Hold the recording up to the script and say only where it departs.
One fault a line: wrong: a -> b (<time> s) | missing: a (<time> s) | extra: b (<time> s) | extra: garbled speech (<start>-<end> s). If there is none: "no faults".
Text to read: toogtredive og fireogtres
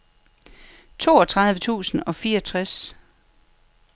extra: tusind (1.6 s)